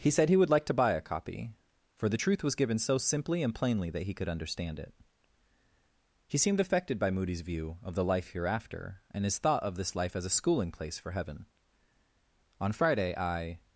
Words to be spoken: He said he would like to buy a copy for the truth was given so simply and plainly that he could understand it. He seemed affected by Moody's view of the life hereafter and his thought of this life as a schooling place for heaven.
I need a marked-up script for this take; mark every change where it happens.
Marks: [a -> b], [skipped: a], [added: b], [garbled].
He said he would like to buy a copy for the truth was given so simply and plainly that he could understand it. He seemed affected by Moody's view of the life hereafter and his thought of this life as a schooling place for heaven. [added: On Friday I]